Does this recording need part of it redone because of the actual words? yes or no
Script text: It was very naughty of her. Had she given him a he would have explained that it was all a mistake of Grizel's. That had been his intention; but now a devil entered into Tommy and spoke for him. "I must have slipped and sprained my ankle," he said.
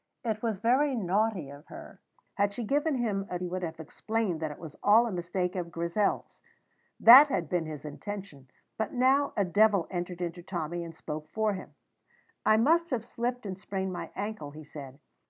no